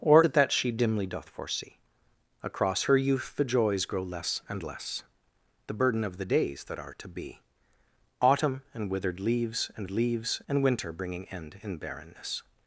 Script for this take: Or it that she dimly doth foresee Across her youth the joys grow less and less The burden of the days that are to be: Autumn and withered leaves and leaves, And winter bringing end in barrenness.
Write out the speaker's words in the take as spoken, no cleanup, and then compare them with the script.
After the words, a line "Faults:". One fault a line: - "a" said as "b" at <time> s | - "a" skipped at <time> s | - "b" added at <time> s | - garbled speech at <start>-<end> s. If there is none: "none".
Or it that she dimly doth foresee Across her youth the joys grow less and less The burden of the days that are to be: Autumn and withered leaves and leaves, And winter bringing end in barrenness.
Faults:
none